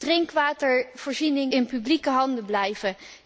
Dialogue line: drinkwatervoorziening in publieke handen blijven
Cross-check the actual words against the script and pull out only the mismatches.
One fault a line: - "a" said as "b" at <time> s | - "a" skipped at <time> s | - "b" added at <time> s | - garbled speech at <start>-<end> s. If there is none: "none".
none